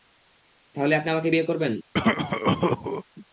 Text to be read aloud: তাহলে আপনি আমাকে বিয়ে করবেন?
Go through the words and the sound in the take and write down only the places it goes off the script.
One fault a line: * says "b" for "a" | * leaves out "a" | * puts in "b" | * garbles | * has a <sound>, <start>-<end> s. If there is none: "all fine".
* has a cough, 1.9-3.0 s